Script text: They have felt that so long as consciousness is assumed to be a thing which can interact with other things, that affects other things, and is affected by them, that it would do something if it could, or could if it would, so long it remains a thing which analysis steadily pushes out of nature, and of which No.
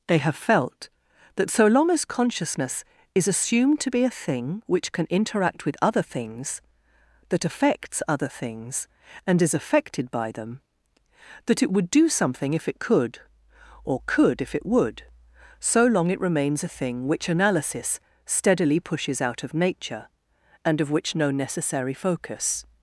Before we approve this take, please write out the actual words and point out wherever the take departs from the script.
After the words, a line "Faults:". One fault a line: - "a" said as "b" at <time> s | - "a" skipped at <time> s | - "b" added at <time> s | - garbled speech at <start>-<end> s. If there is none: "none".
They have felt that so long as consciousness is assumed to be a thing which can interact with other things, that affects other things, and is affected by them, that it would do something if it could, or could if it would, so long it remains a thing which analysis steadily pushes out of nature, and of which No. necessary focus
Faults:
- "necessary focus" added at 21.3 s